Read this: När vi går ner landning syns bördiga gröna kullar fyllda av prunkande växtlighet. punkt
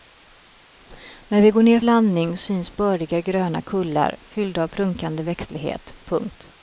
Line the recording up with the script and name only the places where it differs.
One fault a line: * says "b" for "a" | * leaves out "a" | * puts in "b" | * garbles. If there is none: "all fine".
all fine